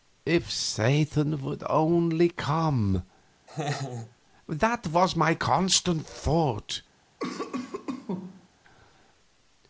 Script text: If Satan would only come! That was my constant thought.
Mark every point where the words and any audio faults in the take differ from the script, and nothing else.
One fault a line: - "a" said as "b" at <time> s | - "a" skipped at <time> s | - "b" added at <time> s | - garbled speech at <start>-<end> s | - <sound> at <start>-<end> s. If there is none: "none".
- laugh at 3.5-4.2 s
- cough at 7.2-8.5 s